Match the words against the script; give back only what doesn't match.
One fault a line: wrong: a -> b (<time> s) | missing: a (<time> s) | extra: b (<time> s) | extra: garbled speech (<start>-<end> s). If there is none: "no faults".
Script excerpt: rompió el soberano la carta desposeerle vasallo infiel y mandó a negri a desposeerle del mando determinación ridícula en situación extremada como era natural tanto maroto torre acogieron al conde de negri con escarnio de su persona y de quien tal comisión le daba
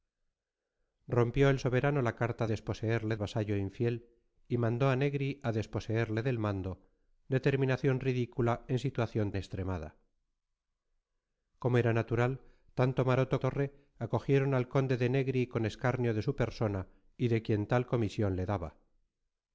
no faults